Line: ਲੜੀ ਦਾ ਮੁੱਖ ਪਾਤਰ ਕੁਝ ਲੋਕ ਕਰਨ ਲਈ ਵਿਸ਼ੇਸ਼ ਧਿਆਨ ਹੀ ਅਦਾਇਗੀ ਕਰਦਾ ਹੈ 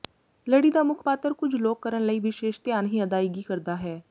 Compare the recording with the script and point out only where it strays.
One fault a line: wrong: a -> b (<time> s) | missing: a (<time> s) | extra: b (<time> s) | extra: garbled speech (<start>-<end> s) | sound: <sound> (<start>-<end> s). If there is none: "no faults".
no faults